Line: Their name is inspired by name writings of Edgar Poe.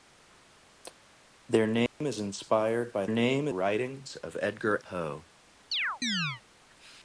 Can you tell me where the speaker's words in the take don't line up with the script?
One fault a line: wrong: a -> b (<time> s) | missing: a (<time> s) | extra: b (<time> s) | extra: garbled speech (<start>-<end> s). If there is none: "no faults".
no faults